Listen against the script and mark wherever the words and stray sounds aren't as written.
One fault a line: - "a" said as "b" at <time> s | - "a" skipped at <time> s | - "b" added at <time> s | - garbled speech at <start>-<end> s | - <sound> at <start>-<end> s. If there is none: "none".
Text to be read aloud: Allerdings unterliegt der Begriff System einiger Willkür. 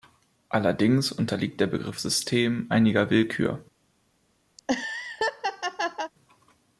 - laugh at 4.6-6.1 s